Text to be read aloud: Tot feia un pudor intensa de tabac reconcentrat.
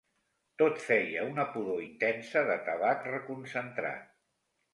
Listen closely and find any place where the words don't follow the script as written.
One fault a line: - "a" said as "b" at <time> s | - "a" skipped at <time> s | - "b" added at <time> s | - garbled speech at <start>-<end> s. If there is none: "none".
- "un" said as "una" at 1.3 s